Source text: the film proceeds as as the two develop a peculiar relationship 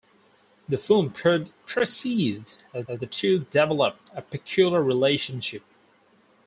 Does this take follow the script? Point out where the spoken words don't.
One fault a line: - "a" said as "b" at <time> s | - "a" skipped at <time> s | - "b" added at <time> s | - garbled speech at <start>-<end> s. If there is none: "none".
none